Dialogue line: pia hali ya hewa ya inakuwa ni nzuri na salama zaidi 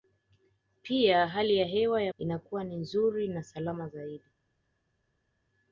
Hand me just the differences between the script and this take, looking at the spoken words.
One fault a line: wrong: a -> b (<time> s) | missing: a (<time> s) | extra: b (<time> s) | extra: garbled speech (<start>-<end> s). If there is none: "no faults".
no faults